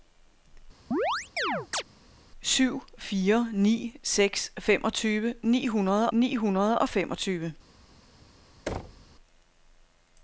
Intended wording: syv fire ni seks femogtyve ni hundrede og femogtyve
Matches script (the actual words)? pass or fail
fail